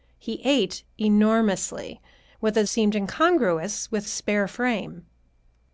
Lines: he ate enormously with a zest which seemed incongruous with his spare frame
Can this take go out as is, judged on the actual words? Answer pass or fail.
fail